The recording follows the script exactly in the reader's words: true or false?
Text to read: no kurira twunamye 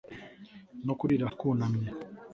true